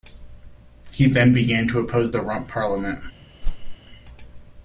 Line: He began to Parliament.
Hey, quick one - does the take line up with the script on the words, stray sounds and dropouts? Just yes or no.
no